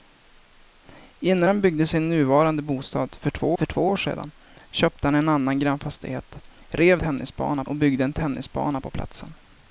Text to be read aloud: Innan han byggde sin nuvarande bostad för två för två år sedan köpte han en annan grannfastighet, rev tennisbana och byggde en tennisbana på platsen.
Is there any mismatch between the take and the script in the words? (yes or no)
no